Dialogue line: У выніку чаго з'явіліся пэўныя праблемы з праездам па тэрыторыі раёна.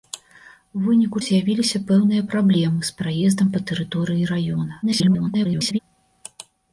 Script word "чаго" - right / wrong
wrong